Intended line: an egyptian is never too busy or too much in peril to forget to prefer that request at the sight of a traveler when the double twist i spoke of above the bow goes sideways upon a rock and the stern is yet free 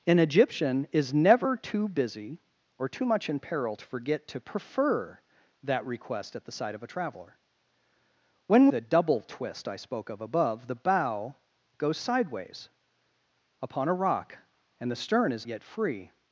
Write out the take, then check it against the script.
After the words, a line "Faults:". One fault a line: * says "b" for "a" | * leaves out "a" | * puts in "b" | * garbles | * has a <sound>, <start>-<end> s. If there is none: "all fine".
an egyptian is never too busy or too much in peril to forget to prefer that request at the sight of a traveler when the double twist i spoke of above the bow goes sideways upon a rock and the stern is yet free
Faults:
all fine